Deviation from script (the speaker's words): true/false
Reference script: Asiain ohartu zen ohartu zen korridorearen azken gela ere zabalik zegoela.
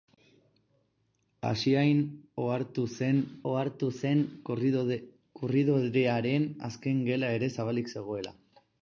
false